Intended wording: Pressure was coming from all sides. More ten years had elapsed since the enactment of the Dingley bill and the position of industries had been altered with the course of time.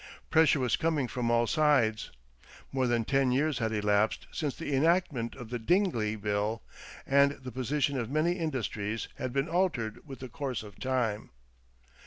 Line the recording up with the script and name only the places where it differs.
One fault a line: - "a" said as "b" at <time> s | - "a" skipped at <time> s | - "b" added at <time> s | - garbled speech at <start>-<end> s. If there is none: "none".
- "than" added at 2.9 s
- "many" added at 8.1 s